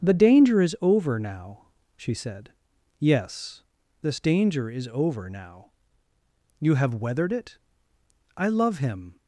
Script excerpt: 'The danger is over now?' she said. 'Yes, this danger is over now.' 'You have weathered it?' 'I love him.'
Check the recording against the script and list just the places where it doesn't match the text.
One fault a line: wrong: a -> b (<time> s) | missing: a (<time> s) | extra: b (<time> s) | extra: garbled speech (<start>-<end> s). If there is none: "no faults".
no faults